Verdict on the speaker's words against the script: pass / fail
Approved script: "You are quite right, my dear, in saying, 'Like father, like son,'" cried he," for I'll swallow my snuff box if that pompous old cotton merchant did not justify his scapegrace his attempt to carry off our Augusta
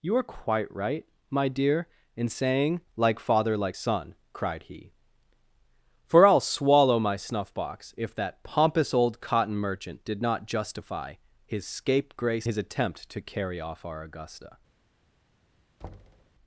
pass